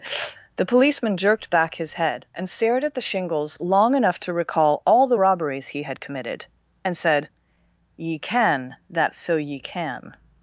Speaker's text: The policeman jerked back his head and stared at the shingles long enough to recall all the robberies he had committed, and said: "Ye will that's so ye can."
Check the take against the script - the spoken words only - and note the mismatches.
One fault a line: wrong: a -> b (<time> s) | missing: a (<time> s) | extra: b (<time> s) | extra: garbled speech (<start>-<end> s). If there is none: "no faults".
wrong: will -> can (8.2 s)